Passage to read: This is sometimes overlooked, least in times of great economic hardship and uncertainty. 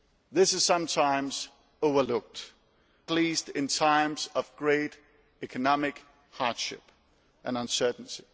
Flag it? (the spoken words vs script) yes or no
no